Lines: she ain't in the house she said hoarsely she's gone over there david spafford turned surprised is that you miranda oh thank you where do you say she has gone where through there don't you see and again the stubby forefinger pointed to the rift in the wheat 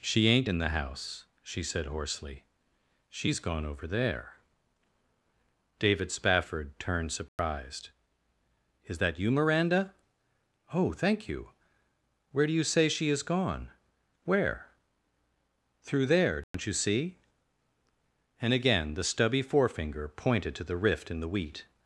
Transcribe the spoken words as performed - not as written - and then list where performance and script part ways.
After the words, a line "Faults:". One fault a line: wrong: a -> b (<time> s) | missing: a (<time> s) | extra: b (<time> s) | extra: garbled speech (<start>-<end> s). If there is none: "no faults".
she ain't in the house she said hoarsely she's gone over there david spafford turned surprised is that you miranda oh thank you where do you say she is gone where through there don't you see and again the stubby forefinger pointed to the rift in the wheat
Faults:
wrong: has -> is (13.1 s)